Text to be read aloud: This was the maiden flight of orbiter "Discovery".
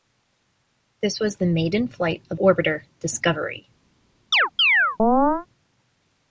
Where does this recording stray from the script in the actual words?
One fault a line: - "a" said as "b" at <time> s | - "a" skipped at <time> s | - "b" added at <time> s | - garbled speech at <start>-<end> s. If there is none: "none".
none